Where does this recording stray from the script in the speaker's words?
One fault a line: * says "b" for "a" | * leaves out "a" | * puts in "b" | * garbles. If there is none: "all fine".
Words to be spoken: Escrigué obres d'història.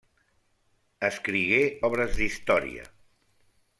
all fine